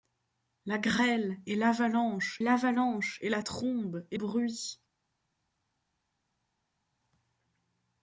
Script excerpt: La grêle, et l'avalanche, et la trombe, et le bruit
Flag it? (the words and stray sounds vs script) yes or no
yes